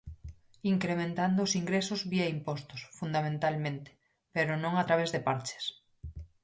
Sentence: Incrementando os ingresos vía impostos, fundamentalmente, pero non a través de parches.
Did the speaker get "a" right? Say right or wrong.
right